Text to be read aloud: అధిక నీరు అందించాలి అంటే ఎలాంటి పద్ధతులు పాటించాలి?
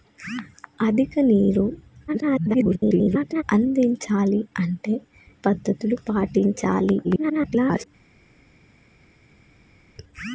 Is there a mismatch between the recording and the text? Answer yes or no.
yes